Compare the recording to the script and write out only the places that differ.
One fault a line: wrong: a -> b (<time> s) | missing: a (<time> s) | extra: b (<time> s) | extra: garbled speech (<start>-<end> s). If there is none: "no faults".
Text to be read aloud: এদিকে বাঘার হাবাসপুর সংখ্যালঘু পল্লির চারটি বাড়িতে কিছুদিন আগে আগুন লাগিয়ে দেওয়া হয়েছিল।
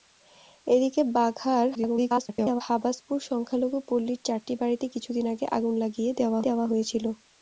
extra: garbled speech (1.7-2.6 s)
extra: দেওয়া (6.5 s)